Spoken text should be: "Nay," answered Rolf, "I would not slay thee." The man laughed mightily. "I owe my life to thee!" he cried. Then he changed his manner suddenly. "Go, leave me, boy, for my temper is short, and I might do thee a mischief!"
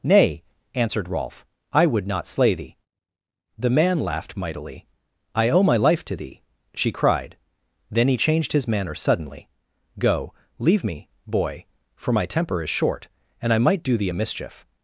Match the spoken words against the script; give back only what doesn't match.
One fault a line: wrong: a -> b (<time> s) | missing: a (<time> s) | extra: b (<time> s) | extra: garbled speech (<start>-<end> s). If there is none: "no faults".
wrong: he -> she (6.7 s)